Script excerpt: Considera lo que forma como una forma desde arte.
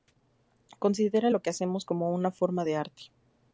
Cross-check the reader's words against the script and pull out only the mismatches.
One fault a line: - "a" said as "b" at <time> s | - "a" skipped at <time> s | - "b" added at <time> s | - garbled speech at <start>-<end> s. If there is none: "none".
- "forma" said as "hacemos" at 1.5 s
- "desde" said as "de" at 2.7 s